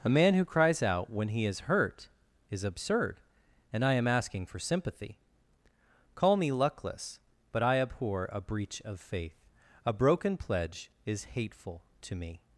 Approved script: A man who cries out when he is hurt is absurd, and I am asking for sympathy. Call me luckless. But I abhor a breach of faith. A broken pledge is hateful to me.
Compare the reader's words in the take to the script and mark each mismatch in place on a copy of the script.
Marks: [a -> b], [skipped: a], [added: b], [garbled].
A man who cries out when he is hurt is absurd, and I am asking for sympathy. Call me luckless. But I abhor a breach of faith. A broken pledge is hateful to me.